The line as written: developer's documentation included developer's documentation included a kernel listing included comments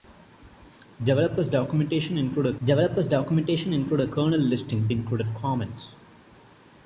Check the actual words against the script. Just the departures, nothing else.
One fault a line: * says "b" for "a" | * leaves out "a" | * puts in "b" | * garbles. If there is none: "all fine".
all fine